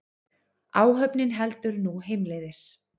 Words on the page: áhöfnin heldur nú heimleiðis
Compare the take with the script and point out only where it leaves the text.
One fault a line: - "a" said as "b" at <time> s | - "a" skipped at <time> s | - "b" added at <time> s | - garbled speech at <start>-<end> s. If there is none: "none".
none